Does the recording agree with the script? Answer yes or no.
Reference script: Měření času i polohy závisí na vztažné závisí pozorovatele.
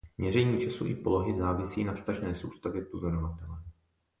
no